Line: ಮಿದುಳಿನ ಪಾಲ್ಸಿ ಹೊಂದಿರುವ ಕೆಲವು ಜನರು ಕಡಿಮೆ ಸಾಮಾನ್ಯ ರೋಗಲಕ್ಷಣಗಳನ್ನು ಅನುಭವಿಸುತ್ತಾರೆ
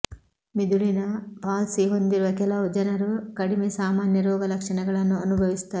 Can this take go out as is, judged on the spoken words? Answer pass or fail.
pass